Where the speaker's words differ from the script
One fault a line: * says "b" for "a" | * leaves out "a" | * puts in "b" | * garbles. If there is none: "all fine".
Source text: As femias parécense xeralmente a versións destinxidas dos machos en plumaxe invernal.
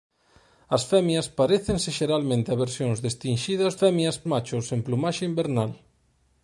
* says "femias" for "dos"